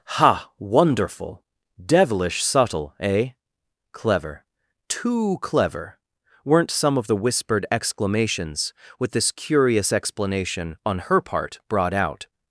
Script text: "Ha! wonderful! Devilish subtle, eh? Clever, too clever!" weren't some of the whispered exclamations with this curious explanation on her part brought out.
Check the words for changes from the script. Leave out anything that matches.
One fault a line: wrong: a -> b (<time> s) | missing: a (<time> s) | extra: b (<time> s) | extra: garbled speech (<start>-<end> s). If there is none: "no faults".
no faults